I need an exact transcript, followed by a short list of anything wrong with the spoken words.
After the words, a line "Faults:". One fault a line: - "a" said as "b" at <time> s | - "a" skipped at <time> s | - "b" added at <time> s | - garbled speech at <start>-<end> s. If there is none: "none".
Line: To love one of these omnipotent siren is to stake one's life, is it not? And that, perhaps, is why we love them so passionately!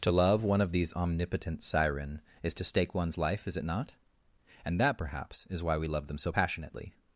To love one of these omnipotent siren is to stake one's life, is it not? And that, perhaps, is why we love them so passionately!
Faults:
none